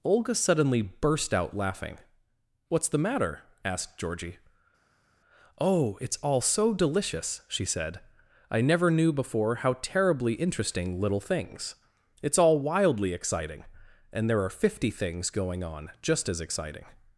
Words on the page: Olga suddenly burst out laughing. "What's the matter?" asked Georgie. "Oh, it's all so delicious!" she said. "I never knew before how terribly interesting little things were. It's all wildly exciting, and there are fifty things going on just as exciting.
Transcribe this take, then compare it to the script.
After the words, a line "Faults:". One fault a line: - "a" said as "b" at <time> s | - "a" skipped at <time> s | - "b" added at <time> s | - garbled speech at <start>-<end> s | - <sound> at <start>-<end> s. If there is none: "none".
Olga suddenly burst out laughing. "What's the matter?" asked Georgie. "Oh, it's all so delicious!" she said. "I never knew before how terribly interesting little things. It's all wildly exciting, and there are fifty things going on just as exciting.
Faults:
- "were" skipped at 11.7 s